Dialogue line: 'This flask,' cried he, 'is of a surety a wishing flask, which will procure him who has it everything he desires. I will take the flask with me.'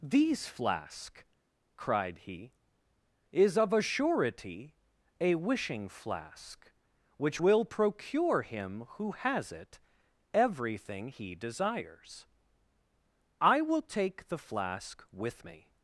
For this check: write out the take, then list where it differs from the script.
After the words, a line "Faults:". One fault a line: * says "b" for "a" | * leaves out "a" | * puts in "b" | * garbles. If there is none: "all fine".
'These flask,' cried he, 'is of a surety a wishing flask, which will procure him who has it everything he desires. I will take the flask with me.'
Faults:
* says "These" for "This"